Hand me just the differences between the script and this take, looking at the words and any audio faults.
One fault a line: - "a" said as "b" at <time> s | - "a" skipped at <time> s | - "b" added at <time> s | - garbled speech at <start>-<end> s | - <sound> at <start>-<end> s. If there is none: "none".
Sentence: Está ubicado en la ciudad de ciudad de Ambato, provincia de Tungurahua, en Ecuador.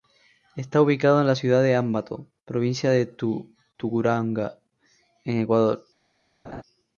- "ciudad de" skipped at 1.7 s
- laugh at 6.4-6.6 s